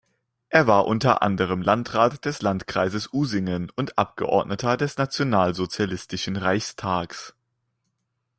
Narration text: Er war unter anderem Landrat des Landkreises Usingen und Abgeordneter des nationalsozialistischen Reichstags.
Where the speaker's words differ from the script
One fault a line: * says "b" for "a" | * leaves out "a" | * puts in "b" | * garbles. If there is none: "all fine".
all fine